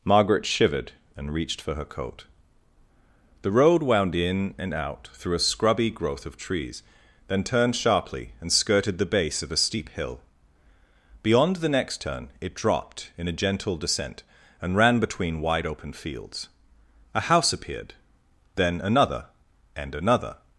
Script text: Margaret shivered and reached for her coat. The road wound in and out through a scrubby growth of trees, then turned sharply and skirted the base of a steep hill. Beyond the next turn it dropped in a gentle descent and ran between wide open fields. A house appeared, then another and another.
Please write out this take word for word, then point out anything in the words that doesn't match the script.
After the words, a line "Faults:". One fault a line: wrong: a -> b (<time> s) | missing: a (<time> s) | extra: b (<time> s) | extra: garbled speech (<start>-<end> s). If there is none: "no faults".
Margaret shivered and reached for her coat. The road wound in and out through a scrubby growth of trees, then turned sharply and skirted the base of a steep hill. Beyond the next turn it dropped in a gentle descent and ran between wide open fields. A house appeared, then another and another.
Faults:
no faults